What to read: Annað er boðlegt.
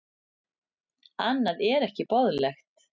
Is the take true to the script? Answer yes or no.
no